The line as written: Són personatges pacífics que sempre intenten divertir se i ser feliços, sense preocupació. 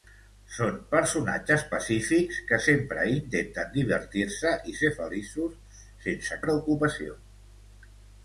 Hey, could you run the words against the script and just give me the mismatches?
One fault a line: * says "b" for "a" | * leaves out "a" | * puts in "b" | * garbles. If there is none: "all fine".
all fine